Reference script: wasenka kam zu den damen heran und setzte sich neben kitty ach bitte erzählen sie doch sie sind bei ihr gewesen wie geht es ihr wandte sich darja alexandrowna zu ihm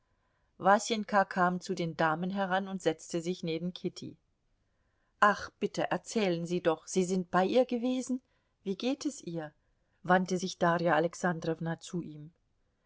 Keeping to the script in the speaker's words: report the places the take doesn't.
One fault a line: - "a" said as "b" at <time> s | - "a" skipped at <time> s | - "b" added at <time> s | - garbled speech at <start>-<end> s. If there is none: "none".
none